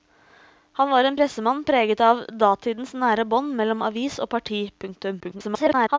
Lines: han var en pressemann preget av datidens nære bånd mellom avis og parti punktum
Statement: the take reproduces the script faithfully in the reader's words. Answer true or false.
false